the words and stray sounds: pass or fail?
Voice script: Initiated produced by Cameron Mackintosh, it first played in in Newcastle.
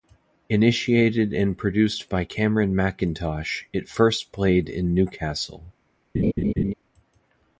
fail